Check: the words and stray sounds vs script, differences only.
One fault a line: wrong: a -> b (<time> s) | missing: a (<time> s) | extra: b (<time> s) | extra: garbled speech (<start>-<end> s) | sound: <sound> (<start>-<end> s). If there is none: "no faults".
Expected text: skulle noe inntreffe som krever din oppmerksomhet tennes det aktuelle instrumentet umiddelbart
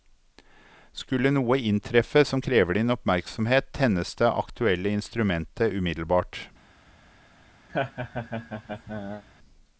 sound: laugh (7.7-9.2 s)